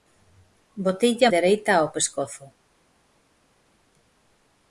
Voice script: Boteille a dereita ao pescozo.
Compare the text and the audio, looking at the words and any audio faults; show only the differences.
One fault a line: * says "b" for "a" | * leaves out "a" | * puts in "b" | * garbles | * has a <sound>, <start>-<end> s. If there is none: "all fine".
all fine